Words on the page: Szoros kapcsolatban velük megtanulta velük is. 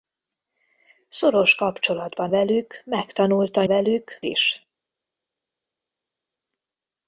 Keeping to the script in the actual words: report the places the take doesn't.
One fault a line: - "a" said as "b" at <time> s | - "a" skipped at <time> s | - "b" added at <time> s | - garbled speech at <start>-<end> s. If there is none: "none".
none